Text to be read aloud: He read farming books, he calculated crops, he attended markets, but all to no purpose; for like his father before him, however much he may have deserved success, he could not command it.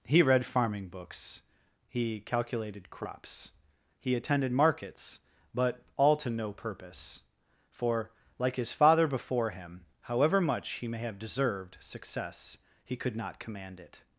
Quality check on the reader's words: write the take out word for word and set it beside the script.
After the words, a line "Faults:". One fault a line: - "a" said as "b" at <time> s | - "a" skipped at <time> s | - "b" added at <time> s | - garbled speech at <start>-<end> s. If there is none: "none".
He read farming books, he calculated crops, he attended markets, but all to no purpose; for like his father before him, however much he may have deserved success, he could not command it.
Faults:
none